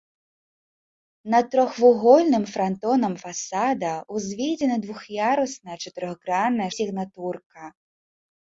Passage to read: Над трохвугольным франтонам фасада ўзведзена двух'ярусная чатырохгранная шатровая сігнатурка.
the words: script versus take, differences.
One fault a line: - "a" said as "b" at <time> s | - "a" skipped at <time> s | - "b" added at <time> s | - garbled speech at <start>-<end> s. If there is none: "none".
- "шатровая" skipped at 6.7 s